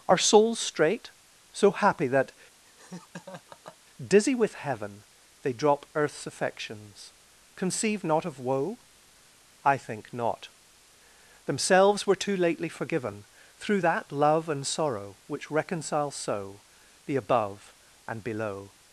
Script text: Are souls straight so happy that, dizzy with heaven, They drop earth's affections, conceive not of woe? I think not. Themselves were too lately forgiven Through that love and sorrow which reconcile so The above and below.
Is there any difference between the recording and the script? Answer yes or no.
no